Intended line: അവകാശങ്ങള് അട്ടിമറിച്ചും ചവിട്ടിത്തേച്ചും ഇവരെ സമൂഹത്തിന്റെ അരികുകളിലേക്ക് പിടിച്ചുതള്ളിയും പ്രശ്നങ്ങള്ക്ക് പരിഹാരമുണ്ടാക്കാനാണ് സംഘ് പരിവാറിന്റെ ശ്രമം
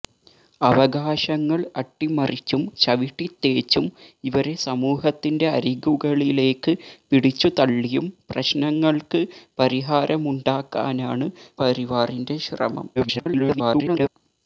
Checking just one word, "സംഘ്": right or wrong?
wrong